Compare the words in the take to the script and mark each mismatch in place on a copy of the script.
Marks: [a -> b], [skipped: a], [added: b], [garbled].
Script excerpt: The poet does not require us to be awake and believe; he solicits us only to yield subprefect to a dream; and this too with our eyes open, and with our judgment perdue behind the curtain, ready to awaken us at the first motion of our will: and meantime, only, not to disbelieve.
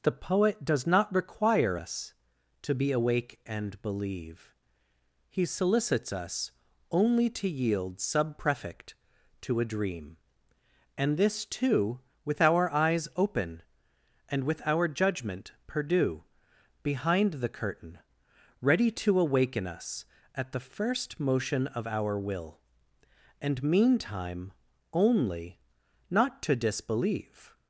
The poet does not require us to be awake and believe; he solicits us only to yield subprefect to a dream; and this too with our eyes open, and with our judgment perdue behind the curtain, ready to awaken us at the first motion of our will: and meantime, only, not to disbelieve.